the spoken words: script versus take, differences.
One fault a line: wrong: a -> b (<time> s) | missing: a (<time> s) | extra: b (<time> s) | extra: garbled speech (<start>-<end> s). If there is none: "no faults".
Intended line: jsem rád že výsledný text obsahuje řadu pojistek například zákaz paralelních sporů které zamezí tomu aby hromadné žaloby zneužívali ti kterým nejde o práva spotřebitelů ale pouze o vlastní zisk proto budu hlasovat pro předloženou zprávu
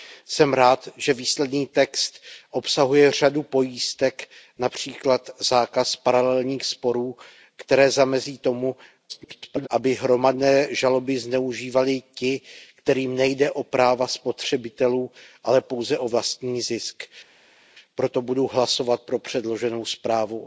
extra: garbled speech (9.1-9.7 s)